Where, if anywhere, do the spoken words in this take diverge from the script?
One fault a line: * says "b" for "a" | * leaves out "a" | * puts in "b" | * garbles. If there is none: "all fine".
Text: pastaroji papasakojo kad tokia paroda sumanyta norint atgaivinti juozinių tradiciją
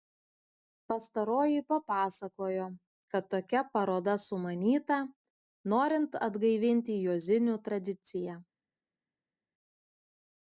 all fine